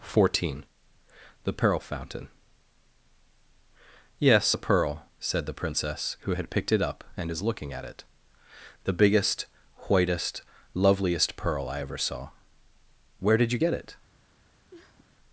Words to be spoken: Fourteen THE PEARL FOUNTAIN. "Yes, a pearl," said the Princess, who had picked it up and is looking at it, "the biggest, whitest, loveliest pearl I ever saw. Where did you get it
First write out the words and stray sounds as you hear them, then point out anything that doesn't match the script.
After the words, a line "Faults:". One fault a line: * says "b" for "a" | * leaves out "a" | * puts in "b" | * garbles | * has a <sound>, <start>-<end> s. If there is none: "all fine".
Fourteen THE PEARL FOUNTAIN. "Yes, a pearl," said the Princess, who had picked it up and is looking at it, "the biggest, whitest, loveliest pearl I ever saw. Where did you get it
Faults:
* has a sniff, 14.7-15.2 s